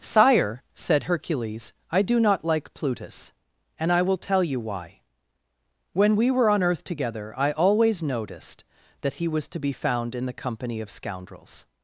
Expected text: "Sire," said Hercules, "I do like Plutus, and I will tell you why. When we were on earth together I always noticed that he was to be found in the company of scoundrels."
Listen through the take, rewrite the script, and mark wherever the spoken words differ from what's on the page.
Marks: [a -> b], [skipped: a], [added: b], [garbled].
"Sire," said Hercules, "I do [added: not] like Plutus, and I will tell you why. When we were on earth together I always noticed that he was to be found in the company of scoundrels."